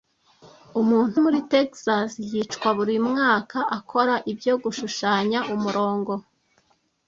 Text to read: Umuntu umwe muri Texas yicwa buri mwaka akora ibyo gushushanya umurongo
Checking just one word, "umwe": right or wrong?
wrong